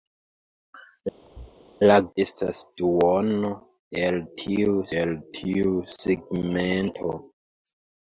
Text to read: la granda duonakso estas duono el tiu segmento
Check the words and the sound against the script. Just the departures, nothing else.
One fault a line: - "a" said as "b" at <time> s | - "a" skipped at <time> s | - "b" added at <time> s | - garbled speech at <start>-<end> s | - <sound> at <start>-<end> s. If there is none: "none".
- thud at 1.2-1.6 s
- "granda duonakso estas duono" said as "estas duono el tiu" at 2.3 s